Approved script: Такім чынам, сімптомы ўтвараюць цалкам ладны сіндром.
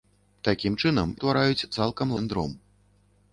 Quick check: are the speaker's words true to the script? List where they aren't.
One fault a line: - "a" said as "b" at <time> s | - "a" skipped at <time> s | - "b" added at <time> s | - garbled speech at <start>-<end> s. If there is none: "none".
- "сімптомы" skipped at 1.1 s
- "ладны" skipped at 2.2 s